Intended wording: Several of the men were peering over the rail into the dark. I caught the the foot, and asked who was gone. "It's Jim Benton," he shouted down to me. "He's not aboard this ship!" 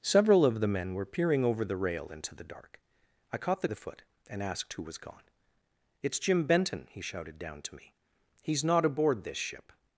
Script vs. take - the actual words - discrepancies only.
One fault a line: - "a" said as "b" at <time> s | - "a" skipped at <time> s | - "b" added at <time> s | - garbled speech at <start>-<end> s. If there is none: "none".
none